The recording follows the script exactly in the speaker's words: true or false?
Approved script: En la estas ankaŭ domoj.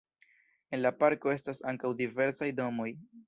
false